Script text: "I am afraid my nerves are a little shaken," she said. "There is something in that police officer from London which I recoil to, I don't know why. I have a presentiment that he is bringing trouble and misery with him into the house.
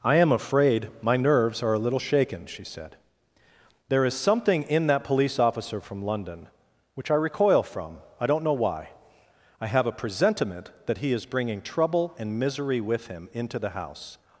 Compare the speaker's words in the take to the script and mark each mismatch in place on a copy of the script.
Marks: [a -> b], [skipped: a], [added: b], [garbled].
"I am afraid my nerves are a little shaken," she said. "There is something in that police officer from London which I recoil [to, -> from] I don't know why. I have a presentiment that he is bringing trouble and misery with him into the house.